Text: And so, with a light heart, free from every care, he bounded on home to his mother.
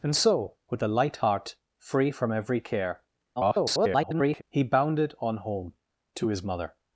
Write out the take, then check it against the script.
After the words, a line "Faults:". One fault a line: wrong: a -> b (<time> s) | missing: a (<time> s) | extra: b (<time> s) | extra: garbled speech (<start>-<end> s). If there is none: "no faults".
And so, with a light heart, free from every care, [garbled] he bounded on home to his mother.
Faults:
extra: garbled speech (3.4-4.4 s)